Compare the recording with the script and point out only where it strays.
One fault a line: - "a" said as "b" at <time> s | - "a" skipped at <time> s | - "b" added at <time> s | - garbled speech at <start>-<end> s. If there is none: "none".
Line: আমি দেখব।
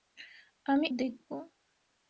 none